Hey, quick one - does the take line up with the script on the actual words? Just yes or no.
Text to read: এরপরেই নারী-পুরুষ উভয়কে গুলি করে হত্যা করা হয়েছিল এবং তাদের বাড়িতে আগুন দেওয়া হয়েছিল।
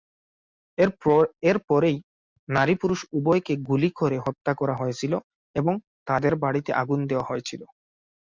yes